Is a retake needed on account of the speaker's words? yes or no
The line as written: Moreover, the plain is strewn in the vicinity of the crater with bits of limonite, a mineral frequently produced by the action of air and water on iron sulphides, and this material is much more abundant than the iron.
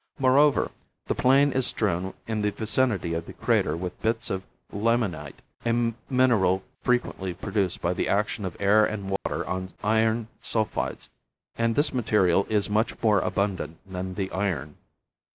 no